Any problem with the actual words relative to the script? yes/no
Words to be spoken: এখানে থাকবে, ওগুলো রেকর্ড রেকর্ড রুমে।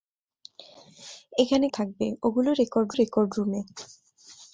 no